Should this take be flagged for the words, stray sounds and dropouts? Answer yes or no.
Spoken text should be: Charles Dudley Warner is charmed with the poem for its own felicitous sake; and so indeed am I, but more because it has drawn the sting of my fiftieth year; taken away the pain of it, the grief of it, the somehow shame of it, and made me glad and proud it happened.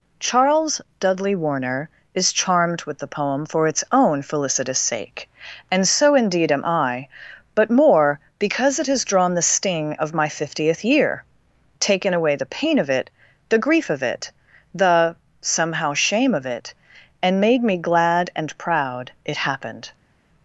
no